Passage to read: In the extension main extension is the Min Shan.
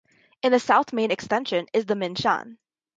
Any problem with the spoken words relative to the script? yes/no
yes